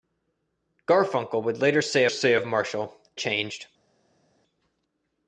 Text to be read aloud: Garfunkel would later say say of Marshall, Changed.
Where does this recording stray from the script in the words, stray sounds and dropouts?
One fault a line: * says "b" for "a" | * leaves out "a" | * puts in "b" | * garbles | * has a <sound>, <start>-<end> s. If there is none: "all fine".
all fine